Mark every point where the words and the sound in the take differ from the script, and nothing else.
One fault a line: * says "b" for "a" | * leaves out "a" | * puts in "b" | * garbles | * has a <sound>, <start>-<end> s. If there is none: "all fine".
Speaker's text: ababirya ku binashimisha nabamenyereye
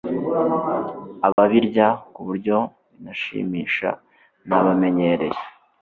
* has a dropout, 1.3-1.4 s
* puts in "buryo"